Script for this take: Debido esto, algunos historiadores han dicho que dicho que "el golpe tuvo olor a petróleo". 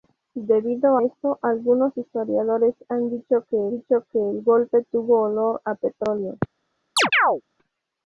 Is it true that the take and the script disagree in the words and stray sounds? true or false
true